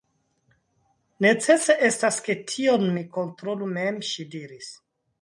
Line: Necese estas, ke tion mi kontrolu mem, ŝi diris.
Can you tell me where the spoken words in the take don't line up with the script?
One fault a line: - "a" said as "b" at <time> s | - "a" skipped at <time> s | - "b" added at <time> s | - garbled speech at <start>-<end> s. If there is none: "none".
none